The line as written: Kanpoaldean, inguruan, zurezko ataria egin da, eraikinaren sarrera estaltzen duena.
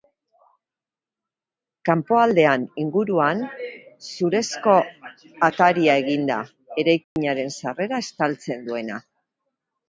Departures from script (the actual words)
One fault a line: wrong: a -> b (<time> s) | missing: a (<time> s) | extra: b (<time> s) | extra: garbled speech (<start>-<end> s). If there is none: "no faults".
no faults